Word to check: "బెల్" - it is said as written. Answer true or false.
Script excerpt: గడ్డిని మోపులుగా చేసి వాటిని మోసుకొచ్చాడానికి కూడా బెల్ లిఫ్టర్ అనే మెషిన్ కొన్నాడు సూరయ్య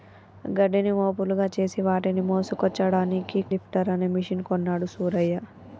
false